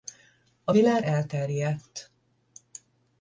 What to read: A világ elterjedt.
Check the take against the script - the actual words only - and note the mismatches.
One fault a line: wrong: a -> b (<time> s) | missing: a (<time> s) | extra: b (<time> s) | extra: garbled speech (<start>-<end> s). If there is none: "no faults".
no faults